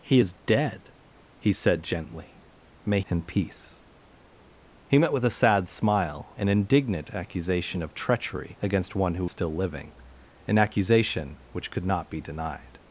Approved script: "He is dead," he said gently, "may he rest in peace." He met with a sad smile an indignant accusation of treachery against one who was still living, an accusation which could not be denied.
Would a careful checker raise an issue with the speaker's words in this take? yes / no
yes